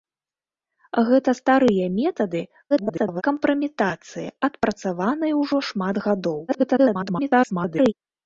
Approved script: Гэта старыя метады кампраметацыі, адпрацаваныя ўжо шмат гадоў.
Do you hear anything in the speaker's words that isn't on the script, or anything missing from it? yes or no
yes